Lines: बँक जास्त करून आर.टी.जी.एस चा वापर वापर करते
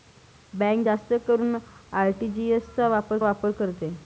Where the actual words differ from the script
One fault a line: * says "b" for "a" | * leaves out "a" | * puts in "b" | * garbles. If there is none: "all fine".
all fine